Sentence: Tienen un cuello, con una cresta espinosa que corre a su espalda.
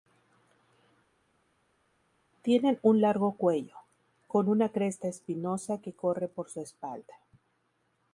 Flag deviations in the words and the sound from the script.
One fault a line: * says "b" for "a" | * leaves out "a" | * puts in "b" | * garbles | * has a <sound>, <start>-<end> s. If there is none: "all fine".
* puts in "largo"
* says "por" for "a"